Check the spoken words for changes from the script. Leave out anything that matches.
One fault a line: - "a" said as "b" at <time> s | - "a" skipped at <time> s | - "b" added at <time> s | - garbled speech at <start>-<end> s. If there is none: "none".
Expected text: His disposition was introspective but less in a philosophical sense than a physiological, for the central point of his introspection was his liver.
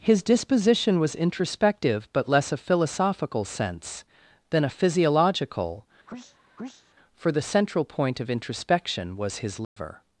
- "in" skipped at 2.5 s
- "his" skipped at 8.3 s